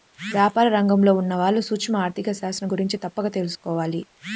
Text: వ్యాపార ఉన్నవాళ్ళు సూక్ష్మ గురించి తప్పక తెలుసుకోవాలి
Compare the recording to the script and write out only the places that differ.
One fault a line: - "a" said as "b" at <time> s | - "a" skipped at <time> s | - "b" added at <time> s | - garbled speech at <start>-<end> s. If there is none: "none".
- "రంగంలో" added at 0.7 s
- "ఆర్ధిక శాస్త్రం" added at 2.0 s